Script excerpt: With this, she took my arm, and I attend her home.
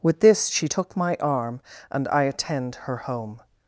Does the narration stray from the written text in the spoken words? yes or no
no